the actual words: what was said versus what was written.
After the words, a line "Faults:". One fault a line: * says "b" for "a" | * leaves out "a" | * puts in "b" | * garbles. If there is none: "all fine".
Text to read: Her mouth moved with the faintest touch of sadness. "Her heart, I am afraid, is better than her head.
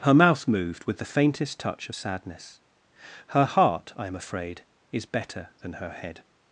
Her mouth moved with the faintest touch of sadness. "Her heart, I am afraid, is better than her head.
Faults:
all fine